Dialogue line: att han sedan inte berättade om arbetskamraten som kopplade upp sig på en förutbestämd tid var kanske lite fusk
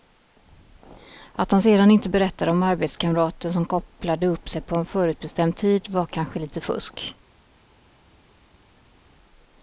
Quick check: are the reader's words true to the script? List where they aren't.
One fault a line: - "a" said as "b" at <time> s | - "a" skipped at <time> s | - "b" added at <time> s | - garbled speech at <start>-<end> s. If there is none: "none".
none